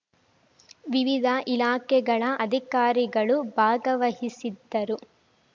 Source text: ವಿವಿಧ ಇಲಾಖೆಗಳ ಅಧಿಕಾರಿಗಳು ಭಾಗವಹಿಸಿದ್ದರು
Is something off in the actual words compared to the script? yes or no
no